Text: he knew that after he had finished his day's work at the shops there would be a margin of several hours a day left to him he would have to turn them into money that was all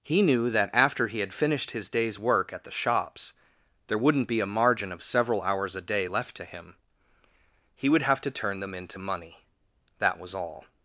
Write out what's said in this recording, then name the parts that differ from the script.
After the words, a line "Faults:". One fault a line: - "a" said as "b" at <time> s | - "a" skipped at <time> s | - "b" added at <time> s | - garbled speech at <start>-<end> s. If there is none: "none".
he knew that after he had finished his day's work at the shops there wouldn't be a margin of several hours a day left to him he would have to turn them into money that was all
Faults:
- "would" said as "wouldn't" at 4.0 s